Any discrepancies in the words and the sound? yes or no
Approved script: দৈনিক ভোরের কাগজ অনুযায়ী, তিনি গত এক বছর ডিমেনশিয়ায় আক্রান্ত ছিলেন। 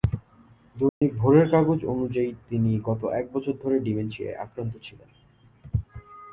yes